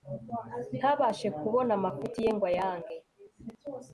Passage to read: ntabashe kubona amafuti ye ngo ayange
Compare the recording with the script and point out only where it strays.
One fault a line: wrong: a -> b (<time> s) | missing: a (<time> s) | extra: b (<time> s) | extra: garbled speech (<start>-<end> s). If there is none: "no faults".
no faults